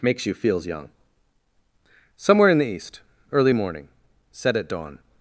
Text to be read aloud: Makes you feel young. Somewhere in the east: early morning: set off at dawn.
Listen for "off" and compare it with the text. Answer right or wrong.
wrong